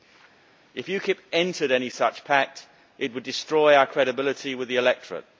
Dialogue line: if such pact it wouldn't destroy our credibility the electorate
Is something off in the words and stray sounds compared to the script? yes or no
yes